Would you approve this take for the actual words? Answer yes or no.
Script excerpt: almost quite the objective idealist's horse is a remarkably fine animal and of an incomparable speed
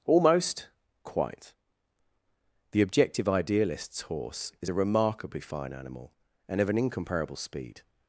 yes